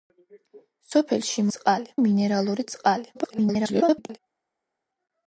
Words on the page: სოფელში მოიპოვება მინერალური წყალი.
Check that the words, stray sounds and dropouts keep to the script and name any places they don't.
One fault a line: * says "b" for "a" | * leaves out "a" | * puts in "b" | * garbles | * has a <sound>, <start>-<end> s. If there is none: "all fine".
* says "წყალი" for "მოიპოვება"
* garbles